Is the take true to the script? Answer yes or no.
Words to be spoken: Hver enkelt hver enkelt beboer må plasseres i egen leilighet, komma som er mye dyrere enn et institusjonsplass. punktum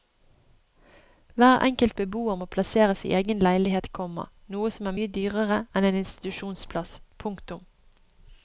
no